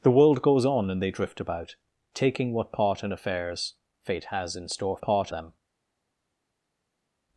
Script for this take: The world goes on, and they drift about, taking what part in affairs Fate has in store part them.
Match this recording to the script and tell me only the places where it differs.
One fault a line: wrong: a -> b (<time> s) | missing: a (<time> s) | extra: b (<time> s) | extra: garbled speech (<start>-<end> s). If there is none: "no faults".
no faults